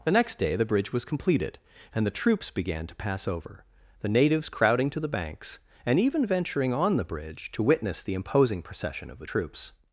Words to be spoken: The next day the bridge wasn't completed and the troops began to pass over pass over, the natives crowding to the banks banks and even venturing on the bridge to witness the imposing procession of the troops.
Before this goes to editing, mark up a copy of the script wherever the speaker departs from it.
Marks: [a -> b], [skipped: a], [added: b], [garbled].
The next day the bridge [wasn't -> was] completed and the troops began to pass over [skipped: pass over,] the natives crowding to the banks [skipped: banks] and even venturing on the bridge to witness the imposing procession of the troops.